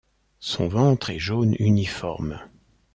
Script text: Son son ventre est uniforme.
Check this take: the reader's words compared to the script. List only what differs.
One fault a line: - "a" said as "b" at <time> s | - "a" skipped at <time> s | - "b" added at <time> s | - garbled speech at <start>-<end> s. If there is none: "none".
- "son" skipped at 0.7 s
- "jaune" added at 1.2 s